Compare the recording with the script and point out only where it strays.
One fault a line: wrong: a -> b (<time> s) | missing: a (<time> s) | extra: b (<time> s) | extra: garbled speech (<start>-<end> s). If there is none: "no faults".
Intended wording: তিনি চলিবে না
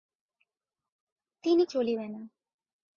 no faults